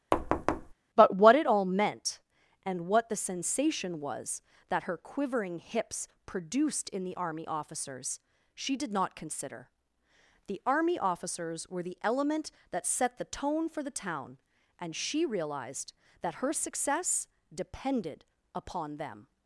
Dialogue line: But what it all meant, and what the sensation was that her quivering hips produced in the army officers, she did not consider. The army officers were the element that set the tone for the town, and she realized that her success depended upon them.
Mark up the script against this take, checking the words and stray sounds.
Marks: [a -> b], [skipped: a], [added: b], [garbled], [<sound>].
[thud] But what it all meant, and what the sensation was that her quivering hips produced in the army officers, she did not consider. The army officers were the element that set the tone for the town, and she realized that her success depended upon them.